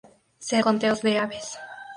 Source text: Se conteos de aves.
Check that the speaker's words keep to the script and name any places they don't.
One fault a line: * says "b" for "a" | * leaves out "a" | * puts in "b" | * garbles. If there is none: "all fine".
all fine